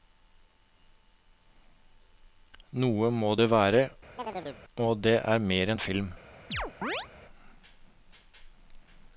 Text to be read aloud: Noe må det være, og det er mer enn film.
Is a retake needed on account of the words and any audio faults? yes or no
yes